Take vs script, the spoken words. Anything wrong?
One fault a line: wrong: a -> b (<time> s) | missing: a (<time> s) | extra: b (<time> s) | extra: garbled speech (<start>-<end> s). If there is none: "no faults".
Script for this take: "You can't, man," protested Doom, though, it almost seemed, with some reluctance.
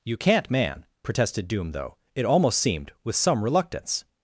no faults